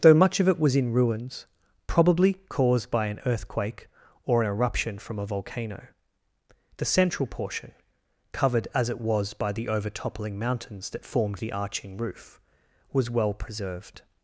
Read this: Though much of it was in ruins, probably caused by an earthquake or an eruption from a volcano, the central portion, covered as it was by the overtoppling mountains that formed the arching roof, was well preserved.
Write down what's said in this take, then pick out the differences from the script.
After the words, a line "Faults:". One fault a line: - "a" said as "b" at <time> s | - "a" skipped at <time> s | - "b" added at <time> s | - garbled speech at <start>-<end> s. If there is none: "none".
Though much of it was in ruins, probably caused by an earthquake or an eruption from a volcano, the central portion, covered as it was by the overtoppling mountains that formed the arching roof, was well preserved.
Faults:
none